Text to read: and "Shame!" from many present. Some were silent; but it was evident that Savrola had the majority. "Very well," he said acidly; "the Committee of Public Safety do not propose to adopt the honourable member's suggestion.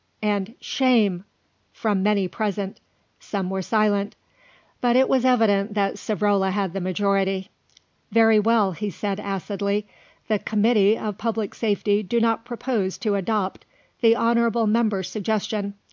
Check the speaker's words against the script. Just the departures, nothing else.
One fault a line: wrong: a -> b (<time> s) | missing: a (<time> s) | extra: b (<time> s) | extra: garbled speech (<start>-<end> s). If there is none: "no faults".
no faults